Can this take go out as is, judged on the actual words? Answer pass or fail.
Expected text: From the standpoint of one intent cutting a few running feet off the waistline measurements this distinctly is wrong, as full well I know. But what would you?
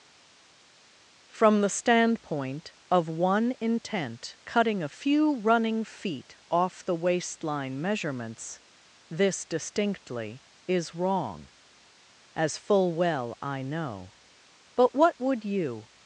pass